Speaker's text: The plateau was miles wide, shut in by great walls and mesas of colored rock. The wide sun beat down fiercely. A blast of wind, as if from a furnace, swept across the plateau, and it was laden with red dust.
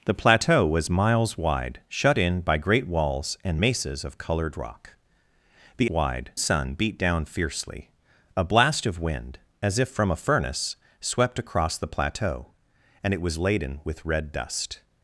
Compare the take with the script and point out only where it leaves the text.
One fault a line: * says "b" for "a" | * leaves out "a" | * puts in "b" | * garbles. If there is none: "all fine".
all fine